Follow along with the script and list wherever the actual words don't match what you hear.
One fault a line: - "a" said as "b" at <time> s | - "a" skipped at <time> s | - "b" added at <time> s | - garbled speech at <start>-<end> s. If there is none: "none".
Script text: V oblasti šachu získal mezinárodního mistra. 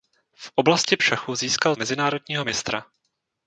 none